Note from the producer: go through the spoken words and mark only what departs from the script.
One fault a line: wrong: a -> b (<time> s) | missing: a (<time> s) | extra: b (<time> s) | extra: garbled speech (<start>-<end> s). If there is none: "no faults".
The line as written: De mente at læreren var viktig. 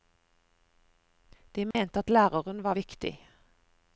no faults